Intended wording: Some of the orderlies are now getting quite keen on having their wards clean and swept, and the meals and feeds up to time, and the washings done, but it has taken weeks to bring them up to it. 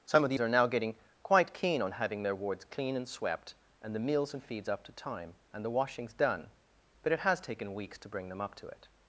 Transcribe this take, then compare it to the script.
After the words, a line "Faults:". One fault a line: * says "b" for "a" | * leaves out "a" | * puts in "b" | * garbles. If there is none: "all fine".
Some of the are now getting quite keen on having their wards clean and swept, and the meals and feeds up to time, and the washings done, but it has taken weeks to bring them up to it.
Faults:
* leaves out "orderlies"